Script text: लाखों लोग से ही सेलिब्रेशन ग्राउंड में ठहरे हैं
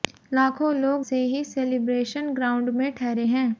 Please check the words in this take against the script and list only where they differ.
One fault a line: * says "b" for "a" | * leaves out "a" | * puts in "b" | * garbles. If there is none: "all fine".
all fine